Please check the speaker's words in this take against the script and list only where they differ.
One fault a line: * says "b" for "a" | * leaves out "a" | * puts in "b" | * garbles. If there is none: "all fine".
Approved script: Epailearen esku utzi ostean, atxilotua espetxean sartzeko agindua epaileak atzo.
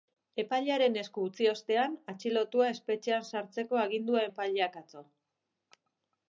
all fine